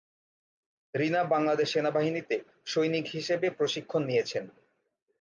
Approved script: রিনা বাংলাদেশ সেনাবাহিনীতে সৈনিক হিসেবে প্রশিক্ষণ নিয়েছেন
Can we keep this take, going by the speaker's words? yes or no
yes